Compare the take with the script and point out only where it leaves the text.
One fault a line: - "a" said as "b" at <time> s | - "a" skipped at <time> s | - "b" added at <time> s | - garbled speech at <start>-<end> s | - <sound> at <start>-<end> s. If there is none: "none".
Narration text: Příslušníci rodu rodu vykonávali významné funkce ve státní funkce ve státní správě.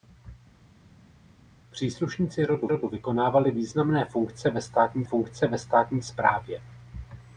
none